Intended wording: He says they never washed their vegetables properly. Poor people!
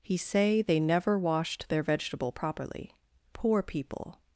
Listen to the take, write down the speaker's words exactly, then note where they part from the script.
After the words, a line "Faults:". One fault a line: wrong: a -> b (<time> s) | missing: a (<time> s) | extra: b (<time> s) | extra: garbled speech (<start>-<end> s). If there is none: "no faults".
He say they never washed their vegetable properly. Poor people!
Faults:
wrong: says -> say (0.2 s)
wrong: vegetables -> vegetable (1.8 s)